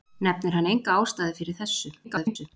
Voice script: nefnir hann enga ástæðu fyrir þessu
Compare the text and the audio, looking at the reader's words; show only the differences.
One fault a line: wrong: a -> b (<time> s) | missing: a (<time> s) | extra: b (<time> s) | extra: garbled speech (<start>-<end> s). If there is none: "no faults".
extra: garbled speech (2.0-2.5 s)